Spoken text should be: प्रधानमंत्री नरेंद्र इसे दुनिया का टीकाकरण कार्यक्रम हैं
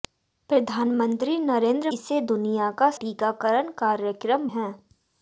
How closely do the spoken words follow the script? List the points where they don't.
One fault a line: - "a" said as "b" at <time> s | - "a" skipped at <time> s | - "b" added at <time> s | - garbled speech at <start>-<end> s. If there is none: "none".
none